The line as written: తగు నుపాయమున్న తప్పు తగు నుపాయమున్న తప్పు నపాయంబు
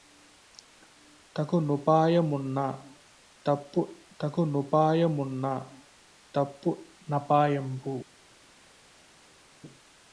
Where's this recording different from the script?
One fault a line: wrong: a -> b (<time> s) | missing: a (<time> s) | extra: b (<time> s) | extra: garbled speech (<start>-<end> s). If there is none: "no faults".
no faults